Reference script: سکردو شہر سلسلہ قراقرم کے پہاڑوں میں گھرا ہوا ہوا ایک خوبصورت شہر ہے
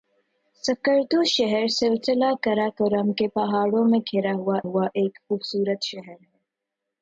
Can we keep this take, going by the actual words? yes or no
yes